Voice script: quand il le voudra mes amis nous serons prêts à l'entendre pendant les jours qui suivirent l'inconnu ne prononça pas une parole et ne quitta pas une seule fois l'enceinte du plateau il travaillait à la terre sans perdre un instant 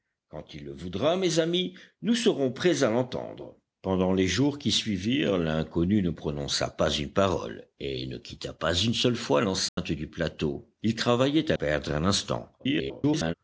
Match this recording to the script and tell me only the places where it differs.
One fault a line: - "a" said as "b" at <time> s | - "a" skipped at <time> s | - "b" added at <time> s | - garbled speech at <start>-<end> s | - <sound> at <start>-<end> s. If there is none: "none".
- dropout at 9.7-9.8 s
- "la terre sans" skipped at 11.6 s
- garbled speech at 12.6-13.3 s